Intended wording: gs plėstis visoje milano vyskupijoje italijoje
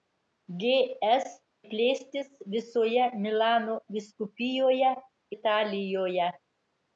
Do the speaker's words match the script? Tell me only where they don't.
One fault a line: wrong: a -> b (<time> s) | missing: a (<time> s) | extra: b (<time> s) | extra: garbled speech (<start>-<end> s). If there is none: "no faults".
no faults